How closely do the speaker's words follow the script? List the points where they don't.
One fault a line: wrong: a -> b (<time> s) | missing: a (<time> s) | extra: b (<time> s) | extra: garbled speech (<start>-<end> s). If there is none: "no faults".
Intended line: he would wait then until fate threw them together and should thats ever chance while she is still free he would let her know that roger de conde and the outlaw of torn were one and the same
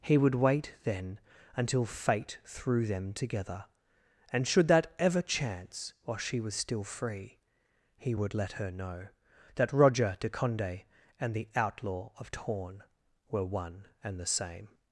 wrong: thats -> that (4.7 s)
wrong: is -> was (6.4 s)